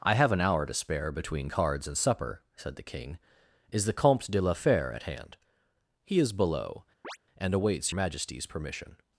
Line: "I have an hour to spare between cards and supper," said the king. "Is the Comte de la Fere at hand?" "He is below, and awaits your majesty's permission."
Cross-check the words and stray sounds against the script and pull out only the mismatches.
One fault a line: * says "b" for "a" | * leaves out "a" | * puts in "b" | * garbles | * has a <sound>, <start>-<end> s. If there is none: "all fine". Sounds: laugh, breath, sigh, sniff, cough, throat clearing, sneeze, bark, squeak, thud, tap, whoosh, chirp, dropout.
* has a chirp, 7.0-7.2 s
* leaves out "your"